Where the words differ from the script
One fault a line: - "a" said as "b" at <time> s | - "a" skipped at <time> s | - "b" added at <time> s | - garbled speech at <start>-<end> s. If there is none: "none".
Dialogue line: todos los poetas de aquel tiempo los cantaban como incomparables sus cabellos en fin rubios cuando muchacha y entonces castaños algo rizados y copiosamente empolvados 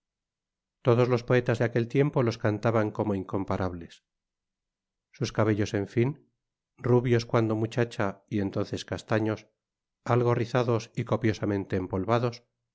none